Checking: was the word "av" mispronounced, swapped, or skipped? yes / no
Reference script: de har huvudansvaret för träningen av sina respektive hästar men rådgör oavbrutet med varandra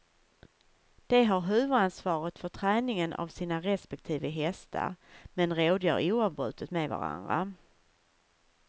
no